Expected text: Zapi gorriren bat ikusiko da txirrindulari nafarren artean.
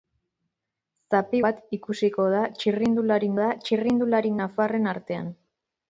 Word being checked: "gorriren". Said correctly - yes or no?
no